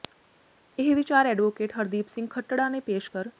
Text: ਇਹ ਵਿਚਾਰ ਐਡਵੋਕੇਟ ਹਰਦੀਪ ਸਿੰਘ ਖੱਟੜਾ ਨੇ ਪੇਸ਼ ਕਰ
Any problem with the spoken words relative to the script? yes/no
no